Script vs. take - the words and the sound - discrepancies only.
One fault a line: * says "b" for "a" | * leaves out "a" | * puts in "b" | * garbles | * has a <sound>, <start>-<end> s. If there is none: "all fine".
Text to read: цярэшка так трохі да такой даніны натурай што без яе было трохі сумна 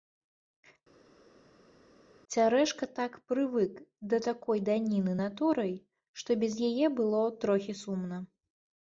* says "прывык" for "трохі"